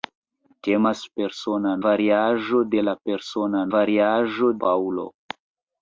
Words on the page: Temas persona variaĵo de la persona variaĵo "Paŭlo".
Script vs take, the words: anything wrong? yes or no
no